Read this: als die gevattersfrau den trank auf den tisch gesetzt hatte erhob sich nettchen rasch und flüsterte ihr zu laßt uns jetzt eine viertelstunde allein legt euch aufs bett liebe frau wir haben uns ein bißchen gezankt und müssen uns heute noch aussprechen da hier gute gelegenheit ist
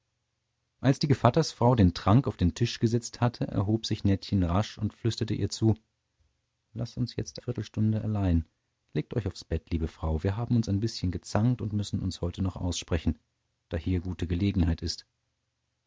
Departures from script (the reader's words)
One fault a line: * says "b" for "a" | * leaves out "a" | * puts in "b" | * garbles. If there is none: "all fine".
* leaves out "eine"